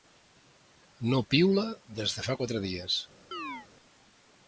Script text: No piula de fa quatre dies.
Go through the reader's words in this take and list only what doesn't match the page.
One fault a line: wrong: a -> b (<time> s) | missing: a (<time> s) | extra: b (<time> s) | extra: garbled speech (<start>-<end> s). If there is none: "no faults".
extra: des (2.0 s)